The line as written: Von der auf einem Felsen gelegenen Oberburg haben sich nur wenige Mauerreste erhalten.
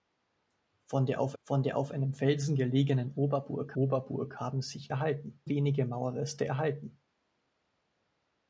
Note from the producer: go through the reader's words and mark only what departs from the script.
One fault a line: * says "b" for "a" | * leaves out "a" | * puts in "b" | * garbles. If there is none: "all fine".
* puts in "von der auf"
* puts in "Oberburg"
* says "erhalten" for "nur"